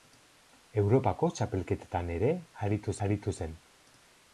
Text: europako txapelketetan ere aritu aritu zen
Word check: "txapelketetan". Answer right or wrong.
right